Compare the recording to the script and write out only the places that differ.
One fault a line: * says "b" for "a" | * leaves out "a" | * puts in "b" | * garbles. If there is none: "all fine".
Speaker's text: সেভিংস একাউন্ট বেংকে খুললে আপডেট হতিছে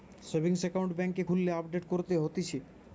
* puts in "করতে"